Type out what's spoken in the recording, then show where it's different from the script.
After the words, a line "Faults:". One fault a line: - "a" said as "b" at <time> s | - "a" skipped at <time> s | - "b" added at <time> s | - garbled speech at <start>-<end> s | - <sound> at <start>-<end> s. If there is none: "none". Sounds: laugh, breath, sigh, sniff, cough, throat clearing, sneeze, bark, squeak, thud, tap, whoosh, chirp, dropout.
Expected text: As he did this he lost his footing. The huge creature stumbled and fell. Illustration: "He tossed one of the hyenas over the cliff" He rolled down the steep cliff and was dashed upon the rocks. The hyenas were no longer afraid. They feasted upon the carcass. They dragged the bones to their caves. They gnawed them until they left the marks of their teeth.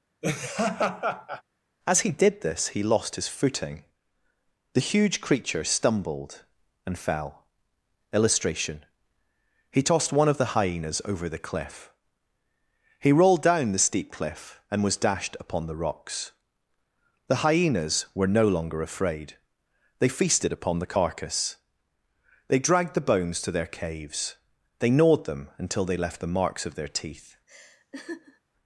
As he did this he lost his footing. The huge creature stumbled and fell. Illustration: "He tossed one of the hyenas over the cliff" He rolled down the steep cliff and was dashed upon the rocks. The hyenas were no longer afraid. They feasted upon the carcass. They dragged the bones to their caves. They gnawed them until they left the marks of their teeth.
Faults:
- laugh at 0.2-1.4 s
- laugh at 27.5-28.4 s